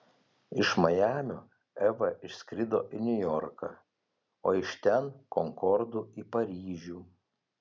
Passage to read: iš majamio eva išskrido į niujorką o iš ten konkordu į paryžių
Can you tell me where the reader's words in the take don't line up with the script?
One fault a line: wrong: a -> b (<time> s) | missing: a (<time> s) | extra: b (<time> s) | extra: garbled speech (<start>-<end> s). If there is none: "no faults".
no faults